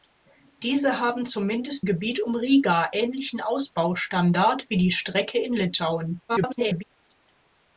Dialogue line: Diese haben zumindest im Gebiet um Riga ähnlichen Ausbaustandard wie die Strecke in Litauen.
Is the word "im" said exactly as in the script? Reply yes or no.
no